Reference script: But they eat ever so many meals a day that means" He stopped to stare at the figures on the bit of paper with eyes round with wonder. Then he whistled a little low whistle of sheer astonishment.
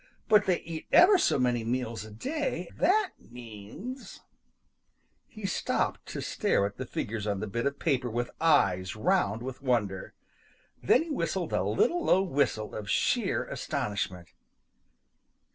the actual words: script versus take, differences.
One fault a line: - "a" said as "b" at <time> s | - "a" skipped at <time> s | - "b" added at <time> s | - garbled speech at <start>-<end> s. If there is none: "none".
none